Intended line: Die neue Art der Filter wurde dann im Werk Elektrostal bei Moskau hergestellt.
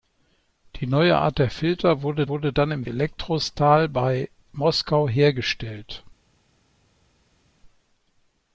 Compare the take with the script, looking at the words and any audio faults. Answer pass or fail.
fail